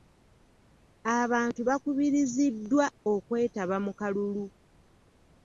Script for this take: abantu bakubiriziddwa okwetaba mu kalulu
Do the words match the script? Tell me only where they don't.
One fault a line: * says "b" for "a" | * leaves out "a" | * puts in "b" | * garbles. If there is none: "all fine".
all fine